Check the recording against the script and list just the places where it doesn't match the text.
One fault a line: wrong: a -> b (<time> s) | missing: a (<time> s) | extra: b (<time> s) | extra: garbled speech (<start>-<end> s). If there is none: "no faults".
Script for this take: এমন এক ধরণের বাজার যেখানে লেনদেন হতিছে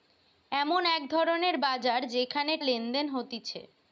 no faults